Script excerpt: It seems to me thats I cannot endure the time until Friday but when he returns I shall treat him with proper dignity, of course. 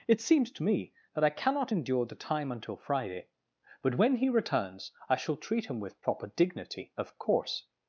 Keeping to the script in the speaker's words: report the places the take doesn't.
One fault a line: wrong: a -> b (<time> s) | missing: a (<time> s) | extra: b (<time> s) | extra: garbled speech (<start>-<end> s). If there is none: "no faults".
wrong: thats -> that (1.1 s)